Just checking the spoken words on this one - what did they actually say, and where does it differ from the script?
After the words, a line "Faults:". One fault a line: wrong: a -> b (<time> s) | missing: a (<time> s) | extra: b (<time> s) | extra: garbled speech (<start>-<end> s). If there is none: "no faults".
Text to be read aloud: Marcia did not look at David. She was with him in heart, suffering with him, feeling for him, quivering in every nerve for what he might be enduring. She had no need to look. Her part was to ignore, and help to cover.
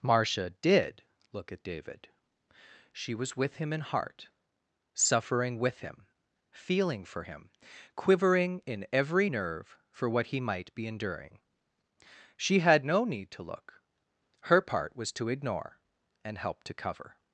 Marcia did look at David. She was with him in heart, suffering with him, feeling for him, quivering in every nerve for what he might be enduring. She had no need to look. Her part was to ignore, and help to cover.
Faults:
missing: not (1.0 s)